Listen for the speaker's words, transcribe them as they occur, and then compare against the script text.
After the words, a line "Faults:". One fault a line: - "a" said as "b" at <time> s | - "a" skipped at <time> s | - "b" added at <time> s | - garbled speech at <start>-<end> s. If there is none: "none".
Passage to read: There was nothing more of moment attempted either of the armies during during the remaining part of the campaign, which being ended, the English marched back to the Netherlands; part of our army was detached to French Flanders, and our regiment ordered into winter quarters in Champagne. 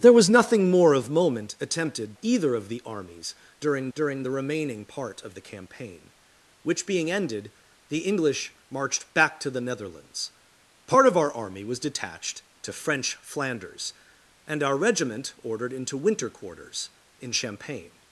There was nothing more of moment attempted either of the armies during during the remaining part of the campaign, which being ended, the English marched back to the Netherlands; part of our army was detached to French Flanders, and our regiment ordered into winter quarters in Champagne.
Faults:
none